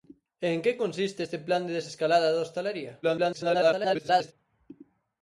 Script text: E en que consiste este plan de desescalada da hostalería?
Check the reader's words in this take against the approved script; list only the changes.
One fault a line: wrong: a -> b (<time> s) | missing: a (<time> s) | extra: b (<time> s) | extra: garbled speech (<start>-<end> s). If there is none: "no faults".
extra: garbled speech (3.0-4.3 s)